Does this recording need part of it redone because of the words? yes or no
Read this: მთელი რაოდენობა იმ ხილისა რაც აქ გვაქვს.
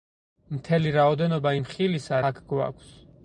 yes